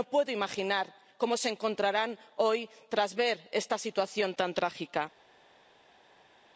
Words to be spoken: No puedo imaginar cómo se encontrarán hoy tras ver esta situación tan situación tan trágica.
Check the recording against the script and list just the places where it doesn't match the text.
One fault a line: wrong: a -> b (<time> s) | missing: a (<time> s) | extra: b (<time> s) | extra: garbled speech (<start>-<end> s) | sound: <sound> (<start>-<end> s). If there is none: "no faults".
missing: situación tan (4.5 s)